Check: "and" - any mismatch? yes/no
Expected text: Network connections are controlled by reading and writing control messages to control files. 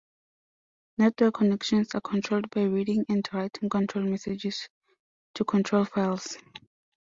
no